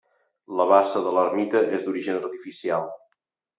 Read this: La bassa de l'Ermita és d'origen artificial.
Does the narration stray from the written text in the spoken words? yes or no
no